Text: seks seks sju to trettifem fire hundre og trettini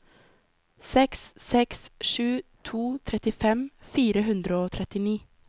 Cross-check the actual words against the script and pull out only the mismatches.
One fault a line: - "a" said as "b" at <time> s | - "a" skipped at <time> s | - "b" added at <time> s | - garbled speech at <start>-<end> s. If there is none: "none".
none